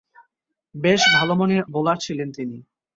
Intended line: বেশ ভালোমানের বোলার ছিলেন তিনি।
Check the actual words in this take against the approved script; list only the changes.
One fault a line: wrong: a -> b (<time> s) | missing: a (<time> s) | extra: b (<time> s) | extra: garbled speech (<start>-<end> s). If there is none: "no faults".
no faults